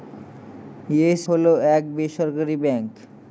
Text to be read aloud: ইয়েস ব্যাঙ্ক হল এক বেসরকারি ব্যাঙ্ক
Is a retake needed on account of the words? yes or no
yes